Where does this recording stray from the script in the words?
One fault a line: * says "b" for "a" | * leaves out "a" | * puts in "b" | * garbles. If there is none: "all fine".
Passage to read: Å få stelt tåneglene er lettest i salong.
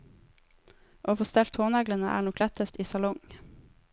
* puts in "nok"